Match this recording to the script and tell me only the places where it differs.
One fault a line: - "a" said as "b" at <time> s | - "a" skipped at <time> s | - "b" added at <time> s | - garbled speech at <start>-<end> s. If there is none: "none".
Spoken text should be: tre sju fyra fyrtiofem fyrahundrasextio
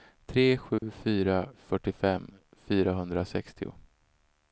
none